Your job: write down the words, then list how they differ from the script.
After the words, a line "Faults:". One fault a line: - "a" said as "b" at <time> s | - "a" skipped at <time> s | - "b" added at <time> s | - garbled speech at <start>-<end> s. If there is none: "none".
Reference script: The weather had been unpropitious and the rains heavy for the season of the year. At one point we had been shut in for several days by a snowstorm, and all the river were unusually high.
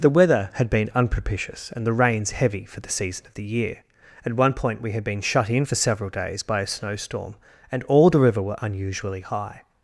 The weather had been unpropitious and the rains heavy for the season of the year. At one point we had been shut in for several days by a snowstorm, and all the river were unusually high.
Faults:
none